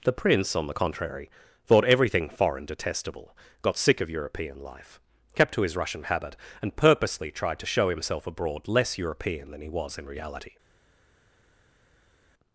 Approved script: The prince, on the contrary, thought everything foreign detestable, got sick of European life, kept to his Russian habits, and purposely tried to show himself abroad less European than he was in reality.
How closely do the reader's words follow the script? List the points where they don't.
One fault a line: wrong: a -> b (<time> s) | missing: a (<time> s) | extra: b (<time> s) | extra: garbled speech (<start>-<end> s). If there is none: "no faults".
wrong: habits -> habit (6.0 s)